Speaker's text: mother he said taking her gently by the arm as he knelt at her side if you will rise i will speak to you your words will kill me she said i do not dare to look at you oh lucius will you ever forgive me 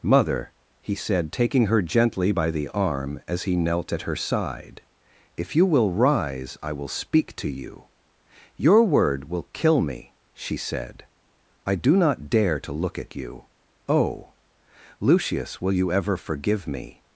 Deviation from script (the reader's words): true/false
true